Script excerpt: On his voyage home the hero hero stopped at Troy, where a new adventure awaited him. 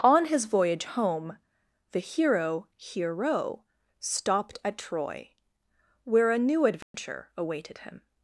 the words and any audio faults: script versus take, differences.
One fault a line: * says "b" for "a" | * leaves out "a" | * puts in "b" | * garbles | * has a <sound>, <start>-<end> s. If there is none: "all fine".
* has a dropout, 6.8-6.9 s